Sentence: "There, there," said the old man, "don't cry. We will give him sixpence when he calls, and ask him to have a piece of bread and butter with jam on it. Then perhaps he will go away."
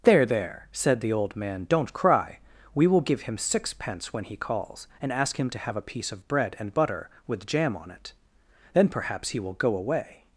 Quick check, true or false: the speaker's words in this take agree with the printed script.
true